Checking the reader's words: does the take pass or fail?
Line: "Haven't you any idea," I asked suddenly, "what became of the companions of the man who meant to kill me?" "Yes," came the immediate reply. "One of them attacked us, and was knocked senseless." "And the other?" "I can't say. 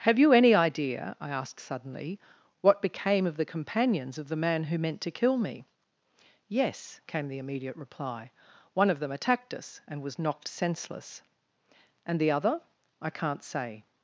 fail